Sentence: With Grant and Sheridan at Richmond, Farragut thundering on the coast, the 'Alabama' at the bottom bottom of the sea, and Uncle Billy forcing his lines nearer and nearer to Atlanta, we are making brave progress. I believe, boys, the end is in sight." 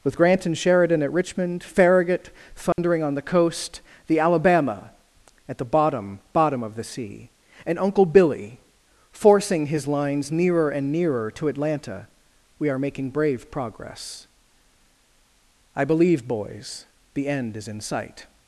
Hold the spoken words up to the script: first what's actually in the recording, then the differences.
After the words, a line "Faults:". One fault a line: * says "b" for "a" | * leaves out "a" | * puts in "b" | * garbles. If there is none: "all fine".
With Grant and Sheridan at Richmond, Farragut thundering on the coast, the 'Alabama' at the bottom bottom of the sea, and Uncle Billy forcing his lines nearer and nearer to Atlanta, we are making brave progress. I believe, boys, the end is in sight."
Faults:
all fine